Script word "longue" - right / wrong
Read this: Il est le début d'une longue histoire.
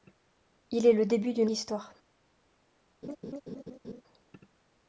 wrong